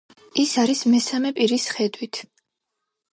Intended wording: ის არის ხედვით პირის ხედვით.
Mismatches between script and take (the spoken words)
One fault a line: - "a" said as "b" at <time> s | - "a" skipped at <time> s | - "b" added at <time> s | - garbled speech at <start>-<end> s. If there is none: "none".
- "ხედვით" said as "მესამე" at 0.9 s